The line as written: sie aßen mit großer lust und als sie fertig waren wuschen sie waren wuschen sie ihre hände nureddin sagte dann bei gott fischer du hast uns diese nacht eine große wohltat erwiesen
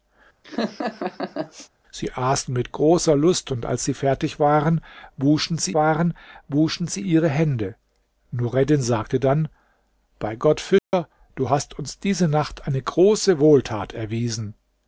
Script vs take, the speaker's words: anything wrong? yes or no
no